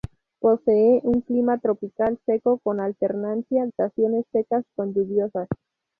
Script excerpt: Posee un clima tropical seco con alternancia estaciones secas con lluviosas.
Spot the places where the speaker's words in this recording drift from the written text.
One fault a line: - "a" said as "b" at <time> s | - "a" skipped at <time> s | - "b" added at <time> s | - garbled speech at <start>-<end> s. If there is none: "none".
none